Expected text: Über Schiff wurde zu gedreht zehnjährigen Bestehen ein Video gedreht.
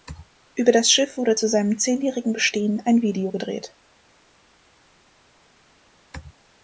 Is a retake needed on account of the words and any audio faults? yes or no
yes